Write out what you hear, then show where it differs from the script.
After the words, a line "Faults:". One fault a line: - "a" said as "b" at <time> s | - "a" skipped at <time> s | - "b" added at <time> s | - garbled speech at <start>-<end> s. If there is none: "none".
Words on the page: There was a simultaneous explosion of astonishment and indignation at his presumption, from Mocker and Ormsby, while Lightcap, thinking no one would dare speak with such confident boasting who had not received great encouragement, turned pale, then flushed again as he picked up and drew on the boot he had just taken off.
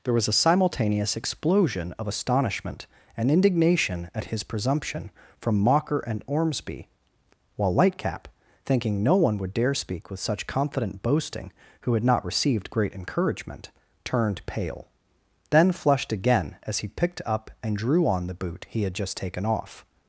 There was a simultaneous explosion of astonishment and indignation at his presumption, from Mocker and Ormsby, while Lightcap, thinking no one would dare speak with such confident boasting who had not received great encouragement, turned pale, then flushed again as he picked up and drew on the boot he had just taken off.
Faults:
none